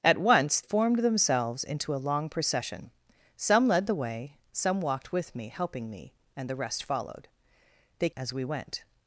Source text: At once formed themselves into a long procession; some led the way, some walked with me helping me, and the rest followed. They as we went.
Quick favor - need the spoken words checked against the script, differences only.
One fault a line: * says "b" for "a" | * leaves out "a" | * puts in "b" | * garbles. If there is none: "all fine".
all fine